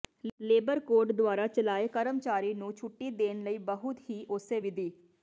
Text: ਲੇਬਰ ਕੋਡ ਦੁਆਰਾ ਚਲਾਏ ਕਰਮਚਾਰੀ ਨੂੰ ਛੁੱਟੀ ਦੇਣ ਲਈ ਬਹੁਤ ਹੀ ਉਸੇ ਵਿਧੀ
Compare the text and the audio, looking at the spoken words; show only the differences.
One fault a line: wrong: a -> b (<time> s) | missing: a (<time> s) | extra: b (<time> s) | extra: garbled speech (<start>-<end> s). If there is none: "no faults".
no faults